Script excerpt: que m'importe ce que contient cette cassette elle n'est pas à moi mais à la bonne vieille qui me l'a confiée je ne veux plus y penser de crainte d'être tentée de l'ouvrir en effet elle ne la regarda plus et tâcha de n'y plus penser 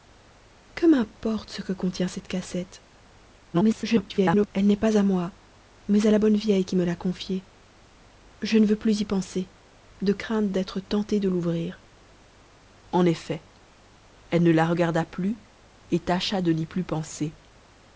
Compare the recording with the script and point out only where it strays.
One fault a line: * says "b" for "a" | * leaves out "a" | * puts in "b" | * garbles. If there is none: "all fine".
* garbles